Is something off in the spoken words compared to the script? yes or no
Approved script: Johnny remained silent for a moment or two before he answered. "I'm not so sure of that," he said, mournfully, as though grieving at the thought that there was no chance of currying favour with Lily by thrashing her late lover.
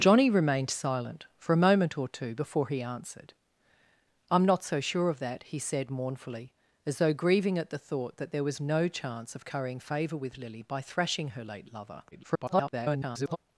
yes